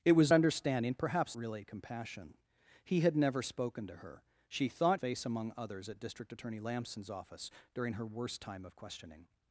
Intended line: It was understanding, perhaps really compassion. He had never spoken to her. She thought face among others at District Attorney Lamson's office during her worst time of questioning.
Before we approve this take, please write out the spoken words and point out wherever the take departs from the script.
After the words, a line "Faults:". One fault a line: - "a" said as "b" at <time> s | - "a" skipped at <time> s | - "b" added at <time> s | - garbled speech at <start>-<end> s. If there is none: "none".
It was understanding, perhaps really compassion. He had never spoken to her. She thought face among others at District Attorney Lamson's office during her worst time of questioning.
Faults:
none